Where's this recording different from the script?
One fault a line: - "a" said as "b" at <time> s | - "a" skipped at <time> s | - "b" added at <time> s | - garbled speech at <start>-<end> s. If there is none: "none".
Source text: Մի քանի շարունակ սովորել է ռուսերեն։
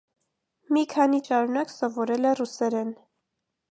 none